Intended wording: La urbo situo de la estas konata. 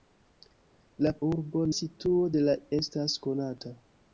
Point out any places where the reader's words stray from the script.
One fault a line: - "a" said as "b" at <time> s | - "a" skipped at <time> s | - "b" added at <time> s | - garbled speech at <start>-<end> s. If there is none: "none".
none